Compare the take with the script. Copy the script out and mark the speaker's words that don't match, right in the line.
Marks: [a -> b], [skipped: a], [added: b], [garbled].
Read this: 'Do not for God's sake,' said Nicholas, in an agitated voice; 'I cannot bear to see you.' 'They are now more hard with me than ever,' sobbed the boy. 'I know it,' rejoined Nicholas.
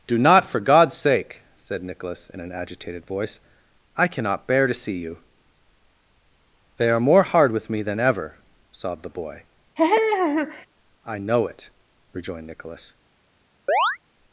'Do not for God's sake,' said Nicholas, in an agitated voice; 'I cannot bear to see you.' 'They are [skipped: now] more hard with me than ever,' sobbed the boy. 'I know it,' rejoined Nicholas.